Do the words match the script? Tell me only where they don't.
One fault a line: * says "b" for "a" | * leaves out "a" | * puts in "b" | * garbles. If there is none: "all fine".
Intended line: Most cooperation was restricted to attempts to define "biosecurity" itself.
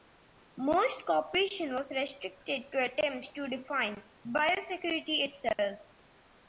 all fine